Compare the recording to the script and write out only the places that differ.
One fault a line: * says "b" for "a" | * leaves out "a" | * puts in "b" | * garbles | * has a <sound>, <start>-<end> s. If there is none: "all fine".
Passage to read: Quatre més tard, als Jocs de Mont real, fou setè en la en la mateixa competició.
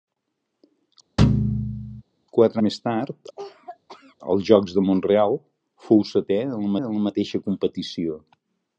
* has a thud, 1.2-2.0 s
* has a cough, 3.4-4.2 s